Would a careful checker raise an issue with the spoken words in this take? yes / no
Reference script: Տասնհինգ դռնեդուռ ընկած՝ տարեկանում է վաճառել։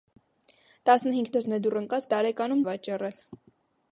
no